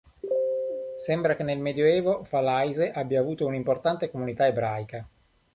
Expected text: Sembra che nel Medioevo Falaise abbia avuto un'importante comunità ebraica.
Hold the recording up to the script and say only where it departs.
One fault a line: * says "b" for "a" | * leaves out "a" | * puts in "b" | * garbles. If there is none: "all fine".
all fine